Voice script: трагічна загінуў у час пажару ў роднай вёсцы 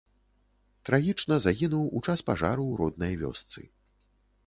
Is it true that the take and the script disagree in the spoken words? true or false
false